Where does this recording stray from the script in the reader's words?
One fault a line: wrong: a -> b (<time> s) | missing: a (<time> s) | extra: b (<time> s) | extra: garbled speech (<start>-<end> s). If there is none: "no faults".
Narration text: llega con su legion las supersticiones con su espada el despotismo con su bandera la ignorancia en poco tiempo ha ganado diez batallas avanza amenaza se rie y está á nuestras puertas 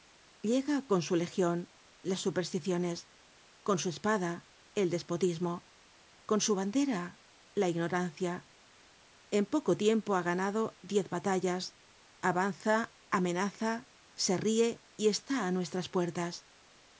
no faults